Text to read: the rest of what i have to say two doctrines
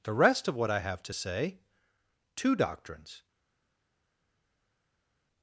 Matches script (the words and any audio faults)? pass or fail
pass